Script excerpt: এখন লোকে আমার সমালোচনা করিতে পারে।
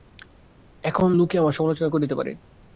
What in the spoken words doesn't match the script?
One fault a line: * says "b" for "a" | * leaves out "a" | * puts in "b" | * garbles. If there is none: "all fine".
all fine